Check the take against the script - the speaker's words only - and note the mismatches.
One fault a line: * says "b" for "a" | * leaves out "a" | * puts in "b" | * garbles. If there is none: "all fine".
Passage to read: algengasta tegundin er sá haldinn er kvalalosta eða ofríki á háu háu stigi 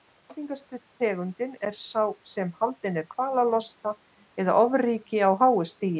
* puts in "sem"
* leaves out "háu"